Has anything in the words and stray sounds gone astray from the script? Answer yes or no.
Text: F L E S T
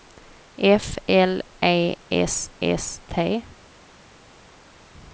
yes